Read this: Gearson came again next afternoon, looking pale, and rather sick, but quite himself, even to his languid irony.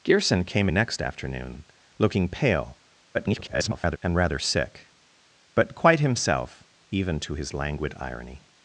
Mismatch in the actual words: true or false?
true